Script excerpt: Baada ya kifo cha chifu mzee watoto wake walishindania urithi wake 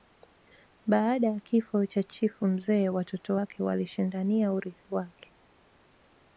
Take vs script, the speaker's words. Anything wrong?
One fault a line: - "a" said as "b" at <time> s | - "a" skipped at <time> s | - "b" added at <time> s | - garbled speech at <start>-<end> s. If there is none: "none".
none